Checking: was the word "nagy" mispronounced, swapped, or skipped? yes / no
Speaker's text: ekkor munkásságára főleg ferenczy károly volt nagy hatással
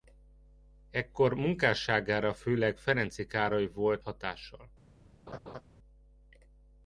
yes